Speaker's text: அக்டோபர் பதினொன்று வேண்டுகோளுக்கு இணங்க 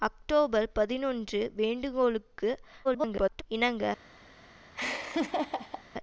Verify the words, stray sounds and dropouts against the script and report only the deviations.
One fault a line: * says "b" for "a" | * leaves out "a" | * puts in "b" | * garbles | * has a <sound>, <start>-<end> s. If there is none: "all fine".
* garbles
* has a laugh, 4.7-5.8 s